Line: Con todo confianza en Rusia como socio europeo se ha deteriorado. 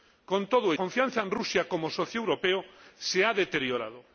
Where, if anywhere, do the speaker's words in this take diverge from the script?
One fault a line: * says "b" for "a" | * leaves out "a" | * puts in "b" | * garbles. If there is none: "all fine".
all fine